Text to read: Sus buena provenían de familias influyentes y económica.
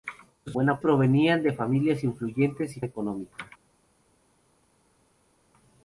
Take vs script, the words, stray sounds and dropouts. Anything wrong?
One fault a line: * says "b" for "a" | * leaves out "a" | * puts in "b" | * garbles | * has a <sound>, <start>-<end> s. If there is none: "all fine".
all fine